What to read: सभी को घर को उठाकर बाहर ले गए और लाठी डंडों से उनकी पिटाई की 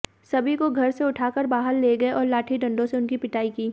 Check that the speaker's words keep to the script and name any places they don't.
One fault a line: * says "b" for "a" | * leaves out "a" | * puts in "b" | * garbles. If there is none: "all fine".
* says "से" for "को"